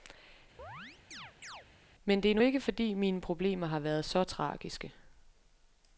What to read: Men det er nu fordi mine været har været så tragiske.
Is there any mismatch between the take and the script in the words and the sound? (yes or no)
yes